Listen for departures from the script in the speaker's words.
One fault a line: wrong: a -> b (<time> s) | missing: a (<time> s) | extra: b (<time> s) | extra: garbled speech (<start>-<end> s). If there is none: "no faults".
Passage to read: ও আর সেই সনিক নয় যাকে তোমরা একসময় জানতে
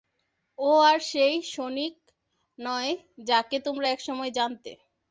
no faults